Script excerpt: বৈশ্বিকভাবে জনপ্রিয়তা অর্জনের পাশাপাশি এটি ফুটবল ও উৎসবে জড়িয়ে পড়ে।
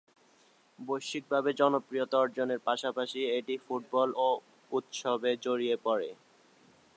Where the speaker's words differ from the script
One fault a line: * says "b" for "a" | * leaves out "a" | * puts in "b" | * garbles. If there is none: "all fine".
all fine